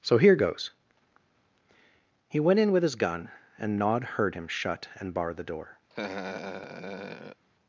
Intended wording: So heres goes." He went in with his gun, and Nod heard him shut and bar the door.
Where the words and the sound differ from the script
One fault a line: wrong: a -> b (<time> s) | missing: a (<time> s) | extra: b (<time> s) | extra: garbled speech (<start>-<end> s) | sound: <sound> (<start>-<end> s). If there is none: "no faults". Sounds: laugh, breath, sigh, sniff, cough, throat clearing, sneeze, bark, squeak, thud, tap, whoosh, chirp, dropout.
wrong: heres -> here (0.2 s)
sound: laugh (5.9-7.4 s)